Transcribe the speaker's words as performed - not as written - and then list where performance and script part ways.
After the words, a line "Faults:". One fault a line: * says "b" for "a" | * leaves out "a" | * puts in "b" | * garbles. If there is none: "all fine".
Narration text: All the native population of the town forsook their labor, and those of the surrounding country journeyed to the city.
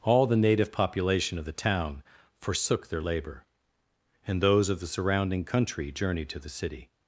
All the native population of the town forsook their labor, and those of the surrounding country journeyed to the city.
Faults:
all fine